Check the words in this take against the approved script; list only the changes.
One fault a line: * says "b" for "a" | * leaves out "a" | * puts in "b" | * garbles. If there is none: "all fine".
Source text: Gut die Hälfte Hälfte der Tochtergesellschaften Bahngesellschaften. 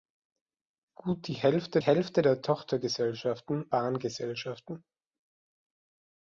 all fine